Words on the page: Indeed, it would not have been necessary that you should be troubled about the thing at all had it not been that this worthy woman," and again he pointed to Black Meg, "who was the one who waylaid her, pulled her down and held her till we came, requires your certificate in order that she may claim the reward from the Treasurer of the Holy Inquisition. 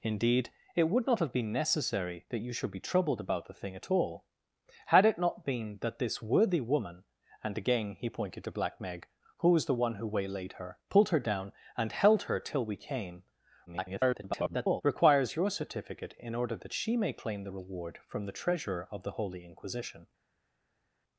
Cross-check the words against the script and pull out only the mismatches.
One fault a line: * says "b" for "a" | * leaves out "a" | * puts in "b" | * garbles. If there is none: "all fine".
* garbles